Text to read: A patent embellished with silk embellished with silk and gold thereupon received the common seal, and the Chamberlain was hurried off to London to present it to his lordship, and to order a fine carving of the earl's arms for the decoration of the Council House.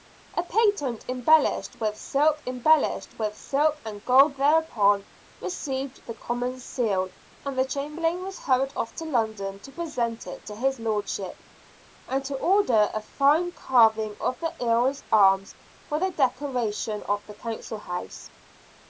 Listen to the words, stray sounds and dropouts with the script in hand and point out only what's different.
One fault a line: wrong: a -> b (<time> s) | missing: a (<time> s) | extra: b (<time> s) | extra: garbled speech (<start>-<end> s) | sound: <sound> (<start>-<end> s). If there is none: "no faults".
no faults